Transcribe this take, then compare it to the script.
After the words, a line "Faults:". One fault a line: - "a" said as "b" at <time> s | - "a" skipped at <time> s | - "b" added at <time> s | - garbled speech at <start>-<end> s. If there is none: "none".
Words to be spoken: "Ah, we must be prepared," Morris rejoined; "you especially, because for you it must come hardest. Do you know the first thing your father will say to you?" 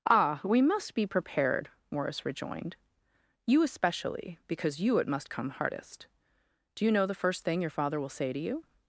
"Ah, we must be prepared," Morris rejoined; "you especially, because you it must come hardest. Do you know the first thing your father will say to you?"
Faults:
- "for" skipped at 4.8 s